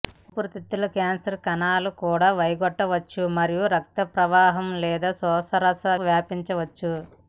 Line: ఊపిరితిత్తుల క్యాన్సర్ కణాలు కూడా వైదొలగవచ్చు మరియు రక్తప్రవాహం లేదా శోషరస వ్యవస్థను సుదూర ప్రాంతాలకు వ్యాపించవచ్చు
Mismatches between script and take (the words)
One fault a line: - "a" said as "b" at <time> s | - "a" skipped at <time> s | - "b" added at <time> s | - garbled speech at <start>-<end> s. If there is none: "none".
- "వ్యవస్థను సుదూర ప్రాంతాలకు" skipped at 5.8 s